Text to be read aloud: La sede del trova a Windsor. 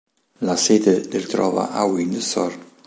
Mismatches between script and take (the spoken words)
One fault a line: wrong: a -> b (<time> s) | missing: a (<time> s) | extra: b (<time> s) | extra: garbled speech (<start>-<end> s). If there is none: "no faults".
no faults